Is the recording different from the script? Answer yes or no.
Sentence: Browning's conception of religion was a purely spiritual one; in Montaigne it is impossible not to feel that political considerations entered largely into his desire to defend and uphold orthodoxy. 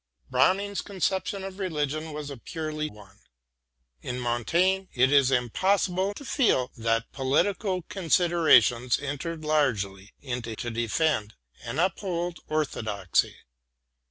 yes